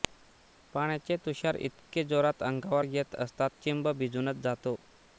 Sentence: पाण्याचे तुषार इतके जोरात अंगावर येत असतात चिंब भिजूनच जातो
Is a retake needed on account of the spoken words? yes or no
no